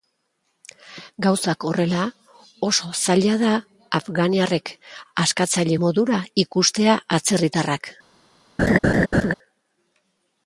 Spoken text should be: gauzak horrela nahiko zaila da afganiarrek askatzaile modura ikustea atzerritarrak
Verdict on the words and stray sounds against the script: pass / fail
fail